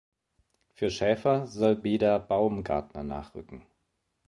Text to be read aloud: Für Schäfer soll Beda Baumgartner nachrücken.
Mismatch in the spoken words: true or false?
false